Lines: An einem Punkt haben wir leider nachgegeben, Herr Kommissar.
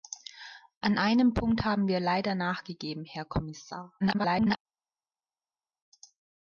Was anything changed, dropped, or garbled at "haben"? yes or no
no